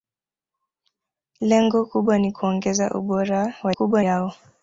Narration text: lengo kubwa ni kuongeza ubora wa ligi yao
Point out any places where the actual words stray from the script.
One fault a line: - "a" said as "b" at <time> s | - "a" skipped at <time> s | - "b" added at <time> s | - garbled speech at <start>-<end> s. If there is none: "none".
- "ligi" said as "kubwa" at 3.7 s